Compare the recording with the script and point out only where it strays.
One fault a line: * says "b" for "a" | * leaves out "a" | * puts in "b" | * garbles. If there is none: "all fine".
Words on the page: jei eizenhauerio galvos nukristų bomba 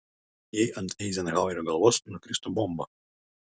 * puts in "ant"